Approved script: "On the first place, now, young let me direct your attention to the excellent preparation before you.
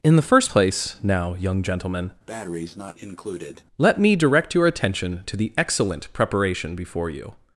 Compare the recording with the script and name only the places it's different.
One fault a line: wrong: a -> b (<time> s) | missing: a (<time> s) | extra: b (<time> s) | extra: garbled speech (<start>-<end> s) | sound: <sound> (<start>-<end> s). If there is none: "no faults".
wrong: On -> In (0.0 s)
extra: gentlemen (1.6 s)
sound: breath (2.3-3.6 s)